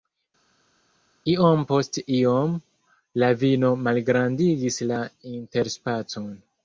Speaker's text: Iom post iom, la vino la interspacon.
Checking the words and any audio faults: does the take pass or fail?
fail